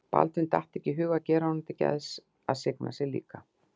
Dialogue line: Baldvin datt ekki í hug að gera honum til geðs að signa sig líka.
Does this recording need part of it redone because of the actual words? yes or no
no